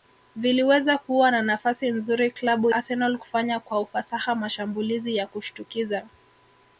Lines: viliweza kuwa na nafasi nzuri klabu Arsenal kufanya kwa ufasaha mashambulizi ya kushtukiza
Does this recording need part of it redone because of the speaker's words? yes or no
no